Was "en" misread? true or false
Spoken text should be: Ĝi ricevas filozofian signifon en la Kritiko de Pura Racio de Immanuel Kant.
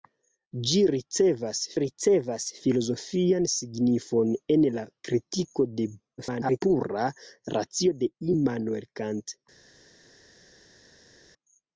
false